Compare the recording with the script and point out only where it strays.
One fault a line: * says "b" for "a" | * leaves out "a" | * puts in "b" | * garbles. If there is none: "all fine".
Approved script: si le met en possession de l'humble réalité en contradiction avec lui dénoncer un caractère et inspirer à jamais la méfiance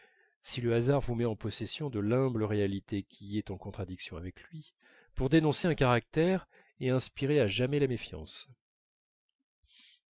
* puts in "hasard vous"
* puts in "qui est"
* puts in "pour"